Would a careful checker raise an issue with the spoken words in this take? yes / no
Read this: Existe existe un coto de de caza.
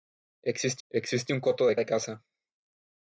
no